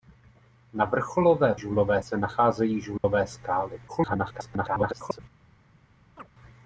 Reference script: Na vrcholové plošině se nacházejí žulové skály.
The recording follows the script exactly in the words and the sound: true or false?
false